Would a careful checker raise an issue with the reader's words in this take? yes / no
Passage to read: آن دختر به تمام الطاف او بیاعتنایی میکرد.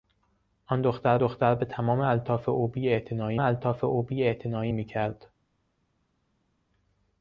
yes